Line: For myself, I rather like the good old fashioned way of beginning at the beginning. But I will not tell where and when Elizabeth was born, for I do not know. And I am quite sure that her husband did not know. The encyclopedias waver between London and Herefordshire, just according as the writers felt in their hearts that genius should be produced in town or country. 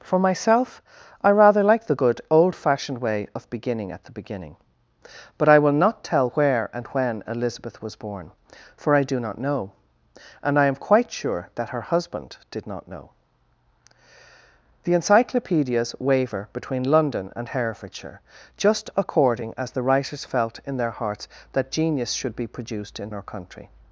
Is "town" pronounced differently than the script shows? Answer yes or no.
yes